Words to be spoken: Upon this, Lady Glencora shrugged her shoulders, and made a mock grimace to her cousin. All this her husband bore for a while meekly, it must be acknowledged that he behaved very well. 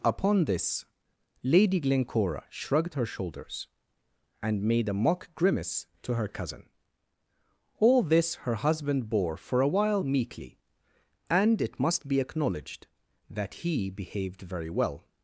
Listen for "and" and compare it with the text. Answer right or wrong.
right